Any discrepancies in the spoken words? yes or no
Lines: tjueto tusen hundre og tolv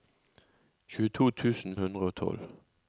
no